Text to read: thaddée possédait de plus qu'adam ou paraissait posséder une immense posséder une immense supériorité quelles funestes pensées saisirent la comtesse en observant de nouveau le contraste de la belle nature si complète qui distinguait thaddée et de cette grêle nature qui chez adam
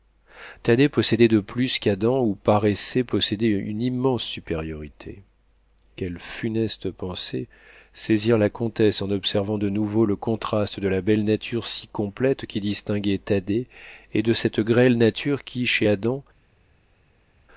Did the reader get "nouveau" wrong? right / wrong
right